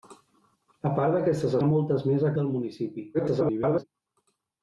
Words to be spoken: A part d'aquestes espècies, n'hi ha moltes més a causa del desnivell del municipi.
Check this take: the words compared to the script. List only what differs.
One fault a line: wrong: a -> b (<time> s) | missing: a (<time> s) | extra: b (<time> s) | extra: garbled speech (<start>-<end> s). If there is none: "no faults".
missing: espècies n'hi (1.6 s)
missing: causa del desnivell (2.3 s)
extra: garbled speech (3.1-3.8 s)